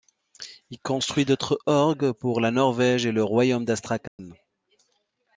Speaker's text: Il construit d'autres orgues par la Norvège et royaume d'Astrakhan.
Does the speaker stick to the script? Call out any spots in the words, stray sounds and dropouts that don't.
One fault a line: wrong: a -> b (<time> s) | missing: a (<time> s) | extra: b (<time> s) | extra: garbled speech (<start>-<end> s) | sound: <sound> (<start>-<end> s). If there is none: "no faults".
wrong: par -> pour (2.1 s)
extra: le (3.1 s)
sound: dropout (4.1-4.2 s)